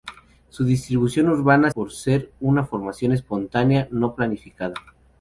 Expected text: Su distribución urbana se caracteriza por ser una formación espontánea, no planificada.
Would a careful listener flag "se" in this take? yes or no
yes